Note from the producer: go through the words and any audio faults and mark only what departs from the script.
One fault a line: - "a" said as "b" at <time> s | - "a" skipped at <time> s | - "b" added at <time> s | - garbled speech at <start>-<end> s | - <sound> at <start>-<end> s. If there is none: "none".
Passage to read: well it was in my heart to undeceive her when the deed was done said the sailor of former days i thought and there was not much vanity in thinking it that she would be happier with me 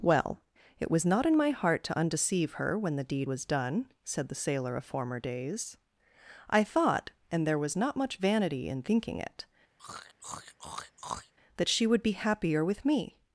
- "not" added at 1.1 s
- throat clearing at 9.8-11.3 s